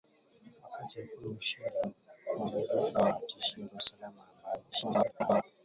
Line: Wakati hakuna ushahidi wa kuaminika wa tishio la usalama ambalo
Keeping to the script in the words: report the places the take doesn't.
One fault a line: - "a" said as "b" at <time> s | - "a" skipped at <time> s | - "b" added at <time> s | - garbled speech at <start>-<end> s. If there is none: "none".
- garbled speech at 4.7-5.4 s